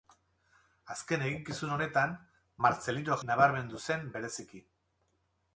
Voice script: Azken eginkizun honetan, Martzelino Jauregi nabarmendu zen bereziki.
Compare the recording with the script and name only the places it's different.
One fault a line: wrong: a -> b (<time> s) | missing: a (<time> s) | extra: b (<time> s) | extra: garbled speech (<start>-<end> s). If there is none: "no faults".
missing: Jauregi (3.2 s)